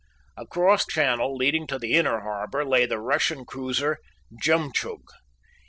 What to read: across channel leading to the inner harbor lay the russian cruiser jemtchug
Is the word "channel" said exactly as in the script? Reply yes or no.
yes